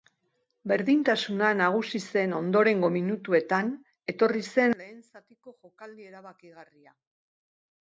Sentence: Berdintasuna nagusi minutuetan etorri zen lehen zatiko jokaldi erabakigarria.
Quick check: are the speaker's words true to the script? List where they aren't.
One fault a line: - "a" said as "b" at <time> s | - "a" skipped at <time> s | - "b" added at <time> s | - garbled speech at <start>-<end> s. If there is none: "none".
- "zen ondorengo" added at 2.1 s